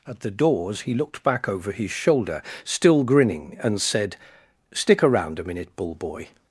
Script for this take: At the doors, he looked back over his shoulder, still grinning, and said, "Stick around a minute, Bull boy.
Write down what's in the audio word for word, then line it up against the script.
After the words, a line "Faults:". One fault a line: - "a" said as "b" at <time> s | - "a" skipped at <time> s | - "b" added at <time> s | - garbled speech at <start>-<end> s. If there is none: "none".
At the doors, he looked back over his shoulder, still grinning, and said, "Stick around a minute, Bull boy.
Faults:
none